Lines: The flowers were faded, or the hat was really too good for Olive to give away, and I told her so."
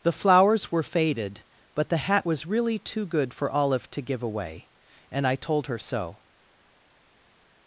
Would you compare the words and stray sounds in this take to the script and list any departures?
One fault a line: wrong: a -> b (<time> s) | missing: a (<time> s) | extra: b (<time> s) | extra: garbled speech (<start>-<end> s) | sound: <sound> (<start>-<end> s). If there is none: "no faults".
wrong: or -> but (1.8 s)